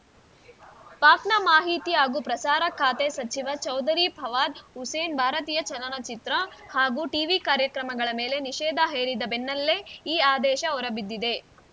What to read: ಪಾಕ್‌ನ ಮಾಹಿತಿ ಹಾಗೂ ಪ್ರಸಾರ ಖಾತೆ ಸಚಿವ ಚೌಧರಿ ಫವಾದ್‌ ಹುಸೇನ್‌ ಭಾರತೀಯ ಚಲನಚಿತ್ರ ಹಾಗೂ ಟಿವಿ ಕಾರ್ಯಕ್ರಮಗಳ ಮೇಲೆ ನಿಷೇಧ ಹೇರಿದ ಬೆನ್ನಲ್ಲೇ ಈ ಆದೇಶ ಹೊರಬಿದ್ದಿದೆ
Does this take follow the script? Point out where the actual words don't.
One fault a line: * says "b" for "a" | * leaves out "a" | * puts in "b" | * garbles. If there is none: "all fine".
all fine